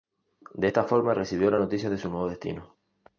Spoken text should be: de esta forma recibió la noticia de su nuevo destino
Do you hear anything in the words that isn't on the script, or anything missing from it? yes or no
no